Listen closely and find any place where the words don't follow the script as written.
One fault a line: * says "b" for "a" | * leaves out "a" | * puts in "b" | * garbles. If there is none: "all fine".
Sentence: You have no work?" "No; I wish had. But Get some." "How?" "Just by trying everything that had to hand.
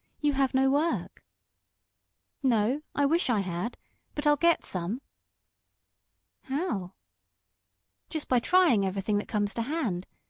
* puts in "I"
* puts in "I'll"
* says "comes" for "had"